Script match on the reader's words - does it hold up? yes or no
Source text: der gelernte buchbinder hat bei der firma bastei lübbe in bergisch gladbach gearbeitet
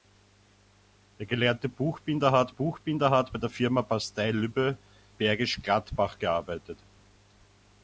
no